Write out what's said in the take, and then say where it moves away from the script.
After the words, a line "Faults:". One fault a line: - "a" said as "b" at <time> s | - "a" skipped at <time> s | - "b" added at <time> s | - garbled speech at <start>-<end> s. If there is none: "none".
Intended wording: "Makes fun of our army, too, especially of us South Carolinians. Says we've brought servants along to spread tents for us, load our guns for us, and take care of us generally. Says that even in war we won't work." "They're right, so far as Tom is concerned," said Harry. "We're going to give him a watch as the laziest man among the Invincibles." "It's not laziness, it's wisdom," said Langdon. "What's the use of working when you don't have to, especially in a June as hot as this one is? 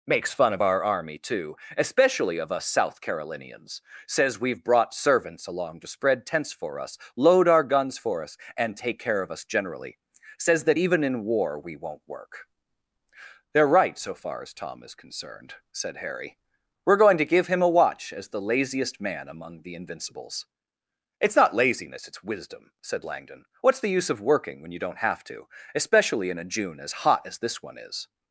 "Makes fun of our army, too, especially of us South Carolinians. Says we've brought servants along to spread tents for us, load our guns for us, and take care of us generally. Says that even in war we won't work." "They're right, so far as Tom is concerned," said Harry. "We're going to give him a watch as the laziest man among the Invincibles." "It's not laziness, it's wisdom," said Langdon. "What's the use of working when you don't have to, especially in a June as hot as this one is?
Faults:
none